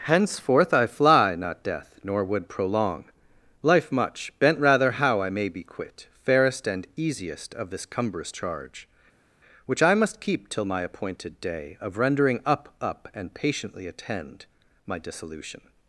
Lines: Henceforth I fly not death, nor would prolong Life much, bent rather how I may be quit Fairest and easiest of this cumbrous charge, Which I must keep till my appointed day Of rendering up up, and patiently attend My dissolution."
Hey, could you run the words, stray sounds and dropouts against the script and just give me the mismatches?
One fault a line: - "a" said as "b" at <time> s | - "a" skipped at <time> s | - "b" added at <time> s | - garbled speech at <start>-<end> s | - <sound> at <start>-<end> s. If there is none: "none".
none